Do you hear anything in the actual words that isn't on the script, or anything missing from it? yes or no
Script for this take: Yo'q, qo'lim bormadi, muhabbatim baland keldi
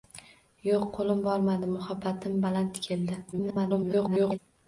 yes